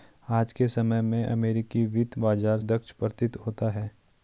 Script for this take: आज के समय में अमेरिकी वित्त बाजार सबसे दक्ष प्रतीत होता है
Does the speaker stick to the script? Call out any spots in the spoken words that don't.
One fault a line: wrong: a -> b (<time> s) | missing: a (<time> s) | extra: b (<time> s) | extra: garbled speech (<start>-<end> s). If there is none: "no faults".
missing: सबसे (2.6 s)